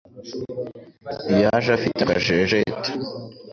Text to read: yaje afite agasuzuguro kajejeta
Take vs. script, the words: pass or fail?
fail